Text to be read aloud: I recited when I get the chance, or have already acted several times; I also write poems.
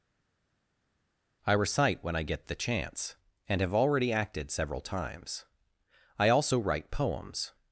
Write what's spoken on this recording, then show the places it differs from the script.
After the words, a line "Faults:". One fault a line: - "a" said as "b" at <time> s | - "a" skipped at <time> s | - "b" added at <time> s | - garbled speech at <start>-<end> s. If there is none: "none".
I recite when I get the chance, and have already acted several times; I also write poems.
Faults:
- "recited" said as "recite" at 1.5 s
- "or" said as "and" at 3.5 s